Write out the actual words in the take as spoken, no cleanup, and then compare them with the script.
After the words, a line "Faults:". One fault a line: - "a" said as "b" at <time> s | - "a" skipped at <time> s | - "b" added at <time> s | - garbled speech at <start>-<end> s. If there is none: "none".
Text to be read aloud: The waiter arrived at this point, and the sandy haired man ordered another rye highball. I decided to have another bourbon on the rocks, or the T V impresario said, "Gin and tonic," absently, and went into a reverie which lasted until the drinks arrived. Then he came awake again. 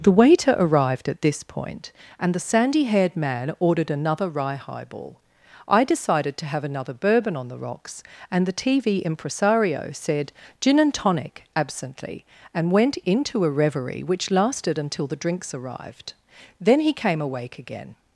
The waiter arrived at this point, and the sandy haired man ordered another rye highball. I decided to have another bourbon on the rocks, and the T V impresario said, "Gin and tonic," absently, and went into a reverie which lasted until the drinks arrived. Then he came awake again.
Faults:
- "or" said as "and" at 8.3 s